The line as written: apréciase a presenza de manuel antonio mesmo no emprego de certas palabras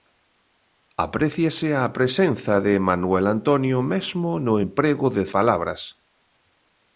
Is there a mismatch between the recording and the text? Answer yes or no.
yes